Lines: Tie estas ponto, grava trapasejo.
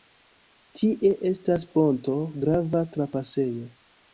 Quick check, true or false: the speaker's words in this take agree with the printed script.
true